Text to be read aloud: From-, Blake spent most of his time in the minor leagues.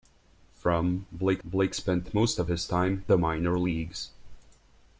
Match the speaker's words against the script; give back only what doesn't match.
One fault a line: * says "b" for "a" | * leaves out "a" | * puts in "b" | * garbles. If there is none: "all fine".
* puts in "Blake"
* leaves out "in"